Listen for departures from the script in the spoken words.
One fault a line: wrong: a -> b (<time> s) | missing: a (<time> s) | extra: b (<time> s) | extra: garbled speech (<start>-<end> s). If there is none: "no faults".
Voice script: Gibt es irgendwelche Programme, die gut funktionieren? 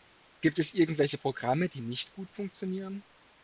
extra: nicht (1.8 s)